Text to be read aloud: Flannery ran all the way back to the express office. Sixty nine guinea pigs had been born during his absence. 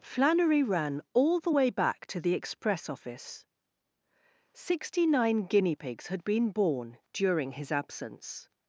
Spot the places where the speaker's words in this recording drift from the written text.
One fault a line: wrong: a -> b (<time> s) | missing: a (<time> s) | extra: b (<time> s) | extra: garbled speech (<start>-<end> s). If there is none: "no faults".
no faults